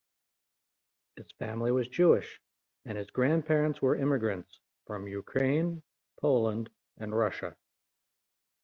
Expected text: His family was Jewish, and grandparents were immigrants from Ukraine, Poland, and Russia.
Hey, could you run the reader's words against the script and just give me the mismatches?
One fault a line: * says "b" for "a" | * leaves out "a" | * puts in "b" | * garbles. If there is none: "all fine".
* puts in "his"